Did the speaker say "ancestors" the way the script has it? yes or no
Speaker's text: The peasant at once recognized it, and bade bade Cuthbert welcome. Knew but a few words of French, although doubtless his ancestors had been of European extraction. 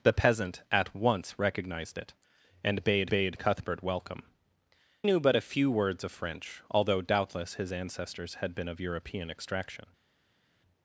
yes